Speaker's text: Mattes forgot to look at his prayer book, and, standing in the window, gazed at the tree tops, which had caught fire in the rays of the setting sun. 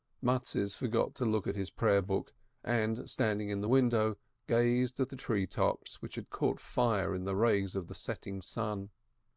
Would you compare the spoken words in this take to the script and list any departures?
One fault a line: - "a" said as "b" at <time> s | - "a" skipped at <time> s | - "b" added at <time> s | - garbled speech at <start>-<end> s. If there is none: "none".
none